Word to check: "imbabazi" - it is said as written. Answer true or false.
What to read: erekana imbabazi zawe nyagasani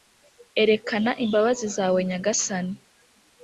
true